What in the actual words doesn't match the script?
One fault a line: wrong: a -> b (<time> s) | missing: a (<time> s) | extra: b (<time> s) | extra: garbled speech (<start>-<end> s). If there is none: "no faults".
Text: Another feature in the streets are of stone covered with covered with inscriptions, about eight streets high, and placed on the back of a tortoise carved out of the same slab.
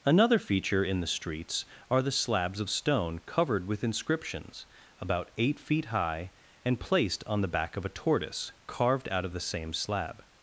extra: the slabs (2.0 s)
missing: covered with (3.8 s)
wrong: streets -> feet (5.6 s)